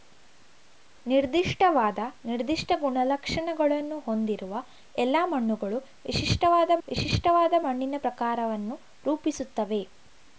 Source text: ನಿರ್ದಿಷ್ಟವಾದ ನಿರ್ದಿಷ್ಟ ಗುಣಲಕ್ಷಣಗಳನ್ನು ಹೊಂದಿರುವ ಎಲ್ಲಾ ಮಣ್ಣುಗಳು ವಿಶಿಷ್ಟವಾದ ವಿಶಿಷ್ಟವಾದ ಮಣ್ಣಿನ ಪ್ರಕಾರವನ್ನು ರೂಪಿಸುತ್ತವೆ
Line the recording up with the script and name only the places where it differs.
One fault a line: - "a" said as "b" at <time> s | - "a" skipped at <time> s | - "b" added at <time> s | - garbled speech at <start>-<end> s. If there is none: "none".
none